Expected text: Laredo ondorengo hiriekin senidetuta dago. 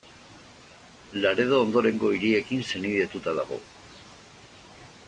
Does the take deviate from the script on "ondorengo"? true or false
false